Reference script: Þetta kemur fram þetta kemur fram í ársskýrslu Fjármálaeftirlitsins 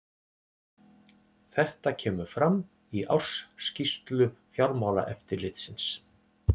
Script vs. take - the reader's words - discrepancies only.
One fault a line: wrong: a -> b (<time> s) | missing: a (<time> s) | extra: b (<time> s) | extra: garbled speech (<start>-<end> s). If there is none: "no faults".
missing: þetta kemur fram (2.6 s)